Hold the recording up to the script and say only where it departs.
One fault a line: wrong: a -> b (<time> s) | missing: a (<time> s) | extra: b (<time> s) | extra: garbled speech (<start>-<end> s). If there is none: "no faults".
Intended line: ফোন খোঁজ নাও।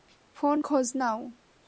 no faults